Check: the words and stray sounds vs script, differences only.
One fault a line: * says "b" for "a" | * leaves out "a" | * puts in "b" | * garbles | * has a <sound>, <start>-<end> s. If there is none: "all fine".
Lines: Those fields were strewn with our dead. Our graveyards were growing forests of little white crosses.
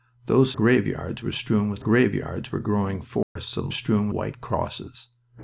* says "graveyards" for "fields"
* leaves out "our dead Our"
* has a dropout, 3.2-3.4 s
* says "strewn" for "little"